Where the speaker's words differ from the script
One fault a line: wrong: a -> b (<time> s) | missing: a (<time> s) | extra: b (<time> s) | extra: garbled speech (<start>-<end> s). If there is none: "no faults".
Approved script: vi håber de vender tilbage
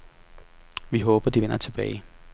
no faults